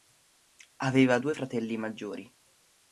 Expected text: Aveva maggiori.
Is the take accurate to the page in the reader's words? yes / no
no